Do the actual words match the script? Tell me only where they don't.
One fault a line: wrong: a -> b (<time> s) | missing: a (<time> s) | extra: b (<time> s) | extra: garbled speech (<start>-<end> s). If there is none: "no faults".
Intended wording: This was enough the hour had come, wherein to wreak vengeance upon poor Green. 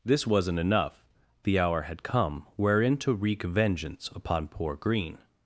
wrong: was -> wasn't (0.2 s)